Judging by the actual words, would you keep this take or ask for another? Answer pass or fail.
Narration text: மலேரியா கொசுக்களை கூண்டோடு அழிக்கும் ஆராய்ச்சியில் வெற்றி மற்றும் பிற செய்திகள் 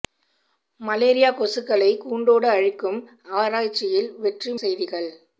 fail